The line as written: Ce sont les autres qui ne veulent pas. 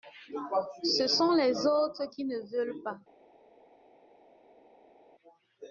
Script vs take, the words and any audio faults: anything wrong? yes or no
no